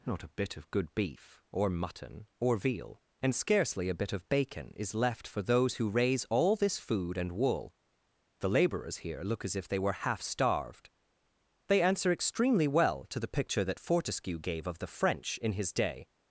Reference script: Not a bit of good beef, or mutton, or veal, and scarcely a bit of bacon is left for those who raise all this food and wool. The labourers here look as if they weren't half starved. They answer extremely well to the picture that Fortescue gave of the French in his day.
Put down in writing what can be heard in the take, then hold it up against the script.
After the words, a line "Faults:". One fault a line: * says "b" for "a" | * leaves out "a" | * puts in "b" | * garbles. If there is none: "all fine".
Not a bit of good beef, or mutton, or veal, and scarcely a bit of bacon is left for those who raise all this food and wool. The labourers here look as if they were half starved. They answer extremely well to the picture that Fortescue gave of the French in his day.
Faults:
* says "were" for "weren't"